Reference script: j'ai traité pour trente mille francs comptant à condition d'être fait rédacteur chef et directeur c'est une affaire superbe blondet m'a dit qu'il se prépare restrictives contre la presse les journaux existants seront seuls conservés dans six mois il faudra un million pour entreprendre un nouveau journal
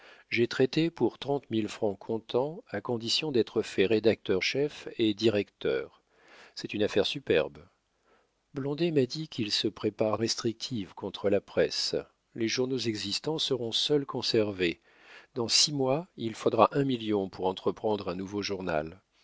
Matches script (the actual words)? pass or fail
pass